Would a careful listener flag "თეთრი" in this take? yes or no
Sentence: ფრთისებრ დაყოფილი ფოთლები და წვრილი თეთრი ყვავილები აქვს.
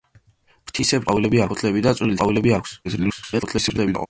yes